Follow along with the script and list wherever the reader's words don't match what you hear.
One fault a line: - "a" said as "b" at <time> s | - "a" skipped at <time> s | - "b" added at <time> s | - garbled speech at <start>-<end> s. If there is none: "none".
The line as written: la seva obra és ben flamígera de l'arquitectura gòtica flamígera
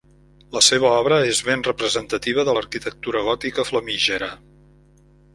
- "flamígera" said as "representativa" at 1.7 s